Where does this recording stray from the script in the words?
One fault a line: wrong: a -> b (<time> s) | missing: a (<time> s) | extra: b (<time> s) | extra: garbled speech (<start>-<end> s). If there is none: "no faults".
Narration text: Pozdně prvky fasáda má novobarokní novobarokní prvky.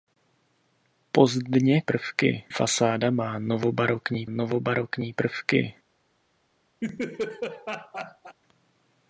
no faults